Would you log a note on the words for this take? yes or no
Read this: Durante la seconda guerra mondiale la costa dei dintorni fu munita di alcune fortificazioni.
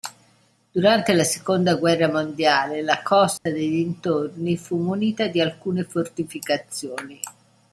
no